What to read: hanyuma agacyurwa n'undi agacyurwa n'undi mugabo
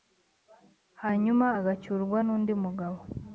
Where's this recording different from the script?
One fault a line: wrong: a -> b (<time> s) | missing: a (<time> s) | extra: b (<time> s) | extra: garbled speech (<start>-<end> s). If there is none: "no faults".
missing: agacyurwa n'undi (2.5 s)